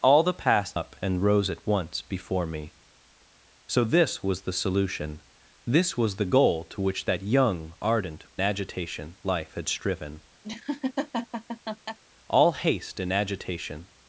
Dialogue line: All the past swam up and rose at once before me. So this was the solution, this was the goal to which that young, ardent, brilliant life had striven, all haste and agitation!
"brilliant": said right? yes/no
no